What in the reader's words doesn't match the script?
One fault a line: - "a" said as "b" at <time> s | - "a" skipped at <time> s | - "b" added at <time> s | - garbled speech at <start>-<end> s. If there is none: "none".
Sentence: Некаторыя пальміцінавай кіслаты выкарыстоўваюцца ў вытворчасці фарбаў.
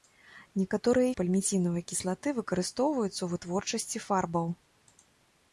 none